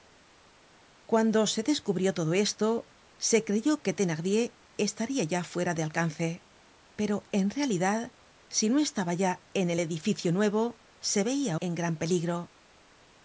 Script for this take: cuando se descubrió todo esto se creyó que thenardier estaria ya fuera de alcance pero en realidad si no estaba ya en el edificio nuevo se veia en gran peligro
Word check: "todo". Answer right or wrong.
right